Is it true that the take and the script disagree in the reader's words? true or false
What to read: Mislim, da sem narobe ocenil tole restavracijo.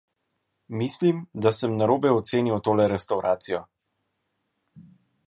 false